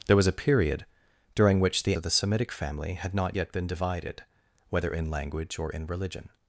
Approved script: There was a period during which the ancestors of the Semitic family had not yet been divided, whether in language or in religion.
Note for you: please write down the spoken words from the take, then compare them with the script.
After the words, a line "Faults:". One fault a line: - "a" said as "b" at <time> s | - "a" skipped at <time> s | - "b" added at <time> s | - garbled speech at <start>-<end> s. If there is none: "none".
There was a period during which the of the Semitic family had not yet been divided, whether in language or in religion.
Faults:
- "ancestors" skipped at 1.9 s